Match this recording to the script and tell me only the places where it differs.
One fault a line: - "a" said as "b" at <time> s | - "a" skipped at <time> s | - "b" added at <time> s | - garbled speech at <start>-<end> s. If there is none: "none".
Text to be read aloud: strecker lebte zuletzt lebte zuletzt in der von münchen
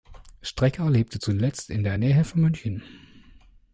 - "lebte zuletzt" skipped at 1.7 s
- "nähe" added at 2.0 s